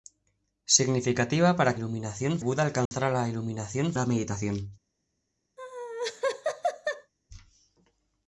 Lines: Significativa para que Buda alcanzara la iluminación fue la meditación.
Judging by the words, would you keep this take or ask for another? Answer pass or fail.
fail